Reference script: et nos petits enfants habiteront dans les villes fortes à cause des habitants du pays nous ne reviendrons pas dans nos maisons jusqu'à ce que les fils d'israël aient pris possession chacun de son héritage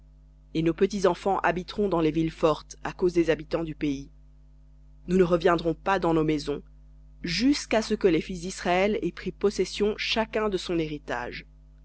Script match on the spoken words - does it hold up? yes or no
yes